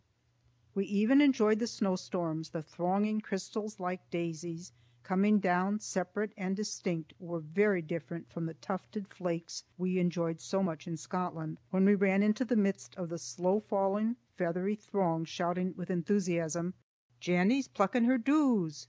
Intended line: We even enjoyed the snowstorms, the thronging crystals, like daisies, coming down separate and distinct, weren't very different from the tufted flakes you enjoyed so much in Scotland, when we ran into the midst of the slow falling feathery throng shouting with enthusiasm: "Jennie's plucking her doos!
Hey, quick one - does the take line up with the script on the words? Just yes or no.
no